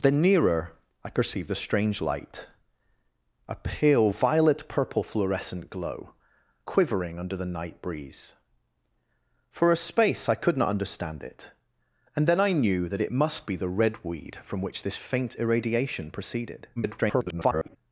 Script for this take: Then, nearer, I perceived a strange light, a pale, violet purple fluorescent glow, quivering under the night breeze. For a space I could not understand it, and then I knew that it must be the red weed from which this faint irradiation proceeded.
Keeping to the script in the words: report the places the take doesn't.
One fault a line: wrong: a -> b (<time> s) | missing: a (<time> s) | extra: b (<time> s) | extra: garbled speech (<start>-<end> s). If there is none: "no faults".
extra: garbled speech (16.8-17.8 s)